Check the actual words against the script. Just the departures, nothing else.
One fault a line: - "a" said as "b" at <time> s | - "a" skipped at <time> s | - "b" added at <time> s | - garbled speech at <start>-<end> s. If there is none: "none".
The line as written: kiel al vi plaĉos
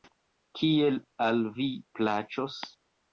none